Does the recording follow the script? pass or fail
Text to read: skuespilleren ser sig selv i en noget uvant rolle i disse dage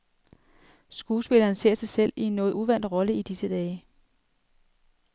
pass